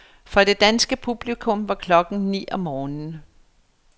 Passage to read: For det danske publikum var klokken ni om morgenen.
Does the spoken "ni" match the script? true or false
true